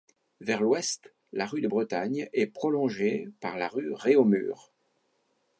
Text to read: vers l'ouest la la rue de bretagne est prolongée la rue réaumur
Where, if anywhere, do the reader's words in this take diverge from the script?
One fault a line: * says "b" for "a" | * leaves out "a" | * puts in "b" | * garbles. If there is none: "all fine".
* leaves out "la"
* puts in "par"